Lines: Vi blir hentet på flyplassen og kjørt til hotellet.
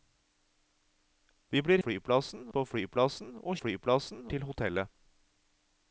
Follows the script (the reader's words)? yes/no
no